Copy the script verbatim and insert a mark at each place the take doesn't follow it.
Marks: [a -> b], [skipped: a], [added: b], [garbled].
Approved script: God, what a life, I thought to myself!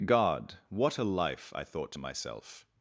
God, what a life, I thought to myself!